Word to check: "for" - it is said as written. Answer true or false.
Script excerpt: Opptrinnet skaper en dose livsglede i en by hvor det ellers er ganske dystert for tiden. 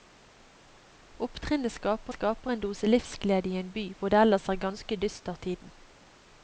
false